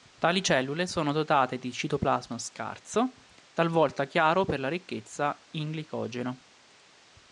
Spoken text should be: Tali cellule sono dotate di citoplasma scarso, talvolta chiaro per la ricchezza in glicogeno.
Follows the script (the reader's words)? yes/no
yes